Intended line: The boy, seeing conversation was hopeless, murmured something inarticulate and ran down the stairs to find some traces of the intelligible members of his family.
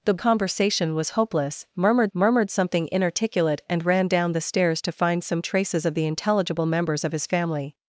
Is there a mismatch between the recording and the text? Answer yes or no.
yes